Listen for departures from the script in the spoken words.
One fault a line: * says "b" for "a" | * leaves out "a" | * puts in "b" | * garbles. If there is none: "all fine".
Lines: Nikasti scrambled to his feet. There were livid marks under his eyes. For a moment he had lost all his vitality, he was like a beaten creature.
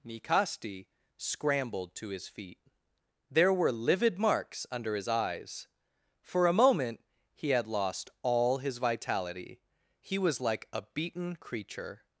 all fine